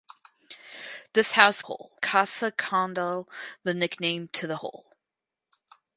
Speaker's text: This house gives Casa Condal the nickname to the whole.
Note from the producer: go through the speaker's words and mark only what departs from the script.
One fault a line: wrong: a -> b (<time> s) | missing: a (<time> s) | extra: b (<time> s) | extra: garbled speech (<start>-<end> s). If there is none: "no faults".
wrong: gives -> whole (1.6 s)